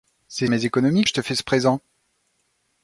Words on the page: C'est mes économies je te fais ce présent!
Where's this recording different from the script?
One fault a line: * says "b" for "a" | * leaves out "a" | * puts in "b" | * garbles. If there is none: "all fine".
all fine